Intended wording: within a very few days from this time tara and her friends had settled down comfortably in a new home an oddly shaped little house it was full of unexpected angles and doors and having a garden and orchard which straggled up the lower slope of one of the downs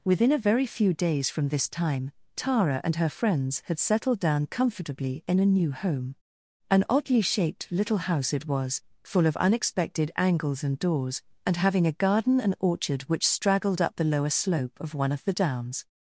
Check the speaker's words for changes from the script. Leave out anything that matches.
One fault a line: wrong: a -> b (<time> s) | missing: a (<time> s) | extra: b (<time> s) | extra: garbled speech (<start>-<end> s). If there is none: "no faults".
no faults